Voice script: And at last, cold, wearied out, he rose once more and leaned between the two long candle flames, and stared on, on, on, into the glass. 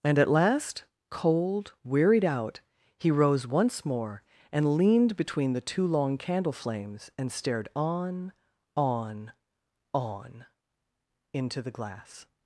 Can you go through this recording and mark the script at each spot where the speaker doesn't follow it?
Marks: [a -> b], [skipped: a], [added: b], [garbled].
And at last, cold, wearied out, he rose once more and leaned between the two long candle flames, and stared on, on, on, into the glass.